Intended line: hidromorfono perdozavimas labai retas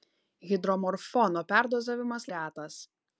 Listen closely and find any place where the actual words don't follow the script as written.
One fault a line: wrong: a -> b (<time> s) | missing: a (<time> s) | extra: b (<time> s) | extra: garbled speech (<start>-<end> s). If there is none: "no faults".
missing: labai (2.3 s)